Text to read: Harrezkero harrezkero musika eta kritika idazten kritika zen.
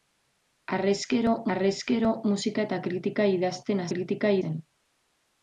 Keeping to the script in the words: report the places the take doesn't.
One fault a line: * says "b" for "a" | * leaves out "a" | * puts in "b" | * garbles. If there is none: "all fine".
all fine